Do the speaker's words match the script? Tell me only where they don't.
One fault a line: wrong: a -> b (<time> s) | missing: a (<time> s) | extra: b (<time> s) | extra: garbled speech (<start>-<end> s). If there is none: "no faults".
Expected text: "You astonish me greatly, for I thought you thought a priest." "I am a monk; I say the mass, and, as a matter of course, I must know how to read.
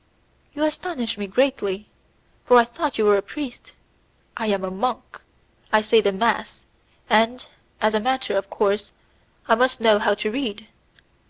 wrong: thought -> were (3.0 s)